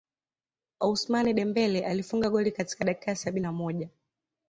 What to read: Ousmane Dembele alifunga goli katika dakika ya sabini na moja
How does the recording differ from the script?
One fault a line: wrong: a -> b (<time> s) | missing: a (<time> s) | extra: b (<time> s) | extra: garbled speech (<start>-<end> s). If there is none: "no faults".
no faults